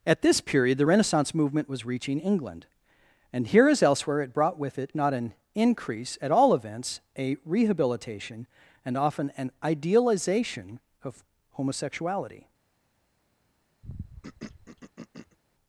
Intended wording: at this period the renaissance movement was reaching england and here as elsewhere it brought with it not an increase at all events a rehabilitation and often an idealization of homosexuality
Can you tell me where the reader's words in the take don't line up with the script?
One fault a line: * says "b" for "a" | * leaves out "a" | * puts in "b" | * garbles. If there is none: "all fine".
all fine